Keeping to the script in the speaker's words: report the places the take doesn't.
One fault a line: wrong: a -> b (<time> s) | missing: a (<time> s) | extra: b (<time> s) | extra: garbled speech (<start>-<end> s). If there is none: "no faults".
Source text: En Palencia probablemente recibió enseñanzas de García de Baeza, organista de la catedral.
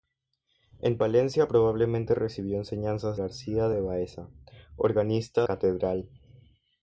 missing: de (3.2 s)
missing: de la (5.5 s)